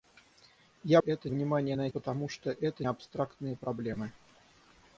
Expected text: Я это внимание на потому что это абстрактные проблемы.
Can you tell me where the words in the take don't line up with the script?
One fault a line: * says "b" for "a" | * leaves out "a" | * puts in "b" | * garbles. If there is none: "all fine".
all fine